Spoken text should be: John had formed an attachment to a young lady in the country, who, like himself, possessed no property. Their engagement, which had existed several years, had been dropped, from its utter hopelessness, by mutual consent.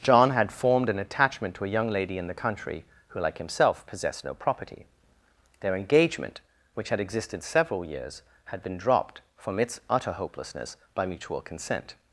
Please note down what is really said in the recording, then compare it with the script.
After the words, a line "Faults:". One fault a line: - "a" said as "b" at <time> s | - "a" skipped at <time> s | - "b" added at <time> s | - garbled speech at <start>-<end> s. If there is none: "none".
John had formed an attachment to a young lady in the country, who, like himself, possessed no property. Their engagement, which had existed several years, had been dropped, from its utter hopelessness, by mutual consent.
Faults:
none